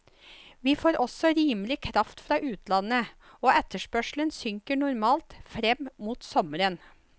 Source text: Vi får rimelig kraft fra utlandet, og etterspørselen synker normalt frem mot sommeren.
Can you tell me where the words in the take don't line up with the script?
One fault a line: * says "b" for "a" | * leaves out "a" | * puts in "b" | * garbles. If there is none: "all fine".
* puts in "også"